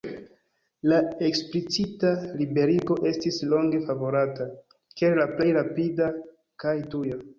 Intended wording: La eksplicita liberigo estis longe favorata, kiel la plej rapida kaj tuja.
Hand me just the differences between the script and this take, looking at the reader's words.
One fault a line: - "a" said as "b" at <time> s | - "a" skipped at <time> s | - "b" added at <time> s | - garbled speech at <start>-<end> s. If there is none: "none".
none